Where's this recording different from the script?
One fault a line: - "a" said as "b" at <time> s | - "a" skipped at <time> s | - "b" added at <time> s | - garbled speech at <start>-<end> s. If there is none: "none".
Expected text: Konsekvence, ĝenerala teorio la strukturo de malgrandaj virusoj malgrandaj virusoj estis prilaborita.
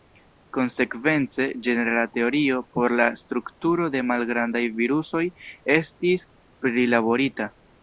- "por" added at 2.8 s
- "malgrandaj virusoj" skipped at 5.2 s